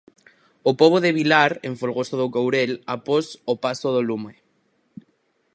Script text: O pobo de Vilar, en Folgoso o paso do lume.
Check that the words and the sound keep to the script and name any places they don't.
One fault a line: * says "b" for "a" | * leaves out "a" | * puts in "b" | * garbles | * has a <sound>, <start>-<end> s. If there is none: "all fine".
* puts in "do Courel após"